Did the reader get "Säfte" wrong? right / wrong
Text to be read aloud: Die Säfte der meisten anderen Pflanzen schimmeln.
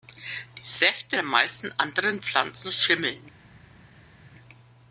right